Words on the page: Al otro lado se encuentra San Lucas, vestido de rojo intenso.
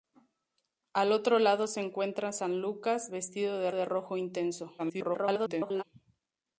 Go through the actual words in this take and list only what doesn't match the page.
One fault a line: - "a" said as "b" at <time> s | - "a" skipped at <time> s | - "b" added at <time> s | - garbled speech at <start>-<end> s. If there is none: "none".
- "de" added at 3.7 s
- garbled speech at 4.8-5.8 s